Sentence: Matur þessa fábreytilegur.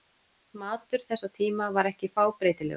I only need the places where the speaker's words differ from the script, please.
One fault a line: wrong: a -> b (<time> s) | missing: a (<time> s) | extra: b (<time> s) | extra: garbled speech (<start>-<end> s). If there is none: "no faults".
extra: tíma var ekki (1.4 s)